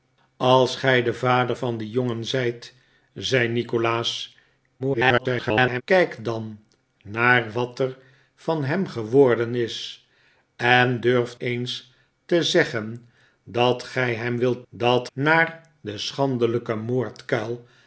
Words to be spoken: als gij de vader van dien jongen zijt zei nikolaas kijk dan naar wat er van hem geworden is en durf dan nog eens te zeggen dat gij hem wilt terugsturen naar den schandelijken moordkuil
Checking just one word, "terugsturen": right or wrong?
wrong